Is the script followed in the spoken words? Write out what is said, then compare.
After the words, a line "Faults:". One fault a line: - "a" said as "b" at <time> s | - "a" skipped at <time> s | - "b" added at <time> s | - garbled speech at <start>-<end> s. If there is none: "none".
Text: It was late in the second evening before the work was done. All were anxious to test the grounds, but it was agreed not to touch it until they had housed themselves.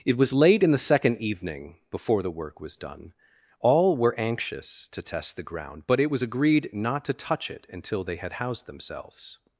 It was late in the second evening before the work was done. All were anxious to test the ground, but it was agreed not to touch it until they had housed themselves.
Faults:
- "grounds" said as "ground" at 5.4 s